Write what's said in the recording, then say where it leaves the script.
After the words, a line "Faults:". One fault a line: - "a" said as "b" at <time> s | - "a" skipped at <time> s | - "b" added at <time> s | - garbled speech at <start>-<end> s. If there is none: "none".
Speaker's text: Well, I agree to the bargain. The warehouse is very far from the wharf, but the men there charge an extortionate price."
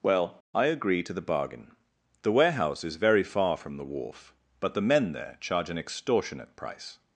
Well, I agree to the bargain. The warehouse is very far from the wharf, but the men there charge an extortionate price."
Faults:
none